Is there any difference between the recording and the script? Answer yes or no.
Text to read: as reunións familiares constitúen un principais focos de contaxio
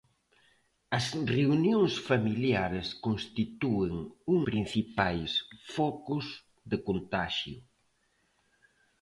no